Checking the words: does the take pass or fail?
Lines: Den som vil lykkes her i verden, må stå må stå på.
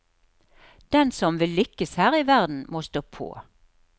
fail